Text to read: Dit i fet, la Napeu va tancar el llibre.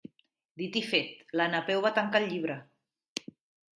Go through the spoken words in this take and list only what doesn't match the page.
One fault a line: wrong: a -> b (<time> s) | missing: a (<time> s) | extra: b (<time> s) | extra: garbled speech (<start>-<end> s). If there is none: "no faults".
no faults